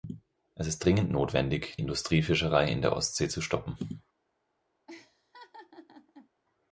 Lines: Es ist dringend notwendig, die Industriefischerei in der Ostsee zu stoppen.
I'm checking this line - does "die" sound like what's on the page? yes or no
no